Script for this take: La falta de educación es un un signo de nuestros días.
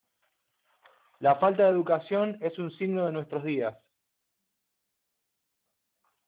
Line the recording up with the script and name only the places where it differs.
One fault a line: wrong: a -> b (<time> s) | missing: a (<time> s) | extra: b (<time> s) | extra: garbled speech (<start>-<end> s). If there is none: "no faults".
missing: un (2.7 s)